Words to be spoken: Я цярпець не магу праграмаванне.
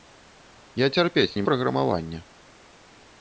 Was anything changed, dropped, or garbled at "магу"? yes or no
yes